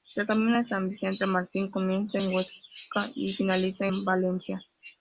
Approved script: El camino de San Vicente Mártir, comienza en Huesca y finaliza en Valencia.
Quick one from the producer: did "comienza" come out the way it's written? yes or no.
yes